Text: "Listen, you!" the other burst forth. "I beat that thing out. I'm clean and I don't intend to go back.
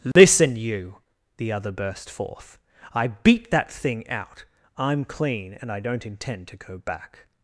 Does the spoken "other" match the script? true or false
true